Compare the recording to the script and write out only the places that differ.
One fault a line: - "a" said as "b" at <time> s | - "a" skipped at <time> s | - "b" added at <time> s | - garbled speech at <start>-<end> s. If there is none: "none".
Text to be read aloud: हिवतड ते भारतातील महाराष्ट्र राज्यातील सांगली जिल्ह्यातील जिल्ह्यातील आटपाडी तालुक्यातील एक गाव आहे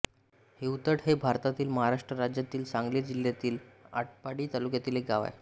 - "ते" said as "हे" at 1.0 s
- "जिल्ह्यातील" skipped at 3.6 s